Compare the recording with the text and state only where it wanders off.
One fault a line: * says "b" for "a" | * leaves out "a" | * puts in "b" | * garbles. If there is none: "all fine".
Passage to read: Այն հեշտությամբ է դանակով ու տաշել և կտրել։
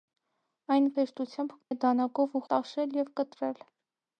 all fine